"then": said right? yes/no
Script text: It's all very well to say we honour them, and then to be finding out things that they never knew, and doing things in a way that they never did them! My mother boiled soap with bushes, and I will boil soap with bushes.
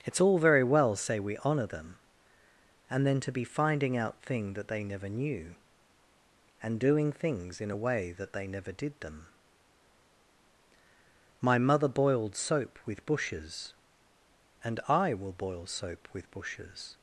yes